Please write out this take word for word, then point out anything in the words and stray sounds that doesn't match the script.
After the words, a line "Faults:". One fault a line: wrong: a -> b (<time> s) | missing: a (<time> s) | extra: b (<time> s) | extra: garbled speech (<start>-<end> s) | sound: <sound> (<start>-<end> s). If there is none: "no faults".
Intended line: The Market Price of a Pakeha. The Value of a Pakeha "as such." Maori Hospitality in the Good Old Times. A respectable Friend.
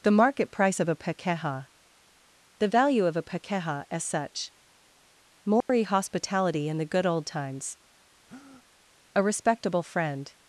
The Market Price of a Pakeha. The Value of a Pakeha "as such." Maori Hospitality in the Good Old Times. A respectable Friend.
Faults:
sound: dropout (5.6-5.7 s)
sound: breath (8.3-8.7 s)